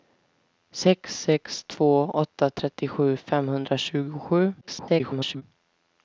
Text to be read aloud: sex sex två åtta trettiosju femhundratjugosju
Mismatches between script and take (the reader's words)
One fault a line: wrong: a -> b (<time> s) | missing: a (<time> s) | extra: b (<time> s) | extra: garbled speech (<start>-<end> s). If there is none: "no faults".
extra: garbled speech (4.6-5.4 s)